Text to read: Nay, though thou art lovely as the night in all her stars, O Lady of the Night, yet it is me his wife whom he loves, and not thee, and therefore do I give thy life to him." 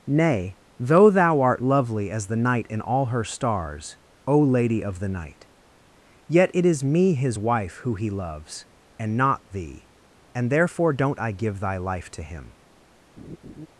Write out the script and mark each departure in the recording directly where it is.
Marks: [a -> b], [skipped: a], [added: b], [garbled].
Nay, though thou art lovely as the night in all her stars, O Lady of the Night, yet it is me his wife [whom -> who] he loves, and not thee, and therefore [do -> don't] I give thy life to him."